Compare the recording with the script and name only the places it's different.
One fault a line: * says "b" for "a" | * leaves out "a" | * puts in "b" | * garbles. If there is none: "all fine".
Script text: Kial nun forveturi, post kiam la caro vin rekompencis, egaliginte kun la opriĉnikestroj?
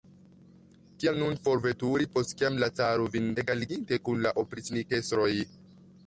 * leaves out "rekompencis"